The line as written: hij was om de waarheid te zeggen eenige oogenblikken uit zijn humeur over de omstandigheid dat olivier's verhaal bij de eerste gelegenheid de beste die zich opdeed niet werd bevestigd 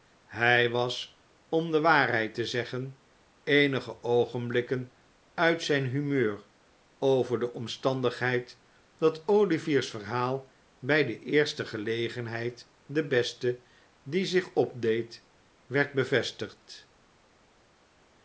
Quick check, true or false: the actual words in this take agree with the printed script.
false